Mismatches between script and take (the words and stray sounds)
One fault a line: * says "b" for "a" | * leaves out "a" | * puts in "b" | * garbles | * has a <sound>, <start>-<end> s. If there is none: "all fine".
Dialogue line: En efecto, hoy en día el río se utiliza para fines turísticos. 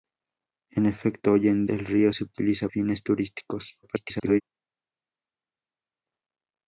* leaves out "día"
* leaves out "para"
* garbles